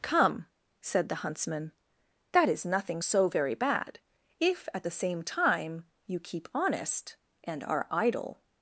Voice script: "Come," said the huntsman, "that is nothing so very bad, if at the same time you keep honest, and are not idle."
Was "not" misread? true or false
true